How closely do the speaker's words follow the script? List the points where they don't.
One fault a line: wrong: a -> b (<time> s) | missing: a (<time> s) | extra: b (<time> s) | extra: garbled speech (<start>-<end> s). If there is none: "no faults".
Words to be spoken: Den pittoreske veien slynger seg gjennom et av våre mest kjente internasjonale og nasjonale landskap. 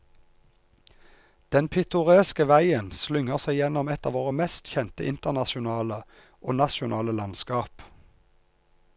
no faults